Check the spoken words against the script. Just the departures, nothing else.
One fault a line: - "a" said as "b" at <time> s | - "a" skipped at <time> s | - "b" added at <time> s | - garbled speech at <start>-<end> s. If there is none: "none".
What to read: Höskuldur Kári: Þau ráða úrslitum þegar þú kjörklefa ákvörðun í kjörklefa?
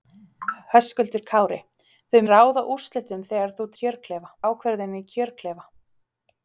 none